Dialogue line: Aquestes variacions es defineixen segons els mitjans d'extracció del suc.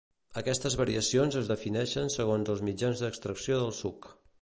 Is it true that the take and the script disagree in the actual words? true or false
false